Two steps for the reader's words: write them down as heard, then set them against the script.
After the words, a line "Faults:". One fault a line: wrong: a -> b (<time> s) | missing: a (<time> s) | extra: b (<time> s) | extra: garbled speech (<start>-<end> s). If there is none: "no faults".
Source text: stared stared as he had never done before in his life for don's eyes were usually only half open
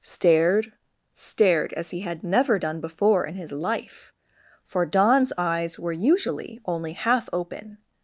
stared stared as he had never done before in his life for don's eyes were usually only half open
Faults:
no faults